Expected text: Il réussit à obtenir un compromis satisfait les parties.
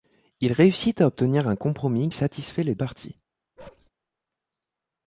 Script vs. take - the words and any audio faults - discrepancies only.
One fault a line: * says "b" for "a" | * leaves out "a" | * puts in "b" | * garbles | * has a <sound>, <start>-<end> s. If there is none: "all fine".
* has a bark, 3.6-3.9 s